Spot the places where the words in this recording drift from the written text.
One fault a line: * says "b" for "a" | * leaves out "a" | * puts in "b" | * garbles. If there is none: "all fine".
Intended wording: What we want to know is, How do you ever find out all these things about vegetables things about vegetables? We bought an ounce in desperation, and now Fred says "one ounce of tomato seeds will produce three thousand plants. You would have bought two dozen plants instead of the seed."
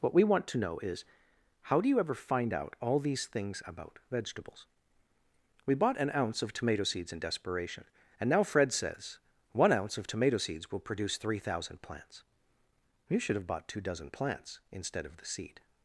* leaves out "things about vegetables"
* puts in "of tomato seeds"
* says "should" for "would"